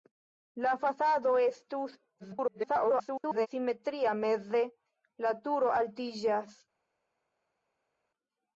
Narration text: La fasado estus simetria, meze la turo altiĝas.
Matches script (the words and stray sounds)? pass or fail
fail